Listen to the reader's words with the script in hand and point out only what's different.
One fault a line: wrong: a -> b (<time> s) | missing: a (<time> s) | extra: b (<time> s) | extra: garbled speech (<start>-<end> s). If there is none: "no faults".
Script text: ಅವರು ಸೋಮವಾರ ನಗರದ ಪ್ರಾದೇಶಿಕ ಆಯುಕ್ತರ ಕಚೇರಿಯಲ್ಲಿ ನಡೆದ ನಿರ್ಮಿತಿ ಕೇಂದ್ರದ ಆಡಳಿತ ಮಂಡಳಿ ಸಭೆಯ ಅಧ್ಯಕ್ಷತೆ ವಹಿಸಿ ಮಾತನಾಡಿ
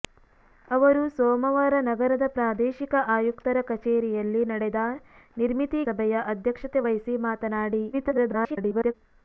missing: ಕೇಂದ್ರದ ಆಡಳಿತ ಮಂಡಳಿ (5.8 s)
extra: garbled speech (7.9-8.9 s)